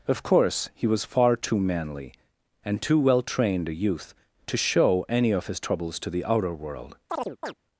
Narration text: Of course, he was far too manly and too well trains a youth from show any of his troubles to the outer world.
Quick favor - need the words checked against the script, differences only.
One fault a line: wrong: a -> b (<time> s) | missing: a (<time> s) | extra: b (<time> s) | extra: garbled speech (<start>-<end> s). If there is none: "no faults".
wrong: trains -> trained (3.2 s)
wrong: from -> to (4.5 s)